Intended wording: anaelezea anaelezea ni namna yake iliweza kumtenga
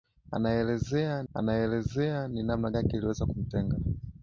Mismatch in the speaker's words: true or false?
false